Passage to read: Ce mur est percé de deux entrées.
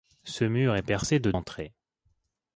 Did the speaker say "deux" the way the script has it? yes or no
no